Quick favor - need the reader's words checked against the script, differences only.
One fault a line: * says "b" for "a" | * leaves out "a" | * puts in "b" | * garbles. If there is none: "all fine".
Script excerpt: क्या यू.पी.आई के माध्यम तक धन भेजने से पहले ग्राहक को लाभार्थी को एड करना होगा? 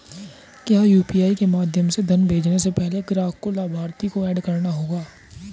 * says "से" for "तक"